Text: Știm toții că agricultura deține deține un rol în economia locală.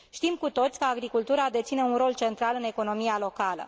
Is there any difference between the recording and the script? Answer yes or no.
yes